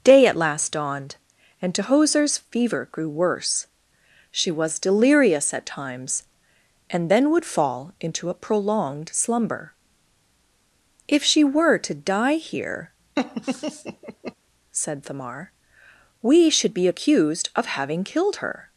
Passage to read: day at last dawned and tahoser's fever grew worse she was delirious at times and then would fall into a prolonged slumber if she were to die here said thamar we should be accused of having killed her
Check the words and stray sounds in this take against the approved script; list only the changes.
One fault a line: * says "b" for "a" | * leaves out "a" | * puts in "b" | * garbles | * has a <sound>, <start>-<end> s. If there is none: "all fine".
* has a laugh, 13.2-14.3 s